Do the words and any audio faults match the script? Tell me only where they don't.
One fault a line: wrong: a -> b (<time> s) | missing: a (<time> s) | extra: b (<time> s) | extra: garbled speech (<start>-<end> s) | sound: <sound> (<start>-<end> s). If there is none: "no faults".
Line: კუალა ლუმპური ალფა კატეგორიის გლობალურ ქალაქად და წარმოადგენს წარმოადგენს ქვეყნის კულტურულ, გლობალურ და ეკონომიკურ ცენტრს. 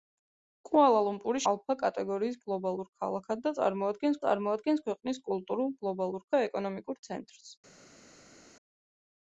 no faults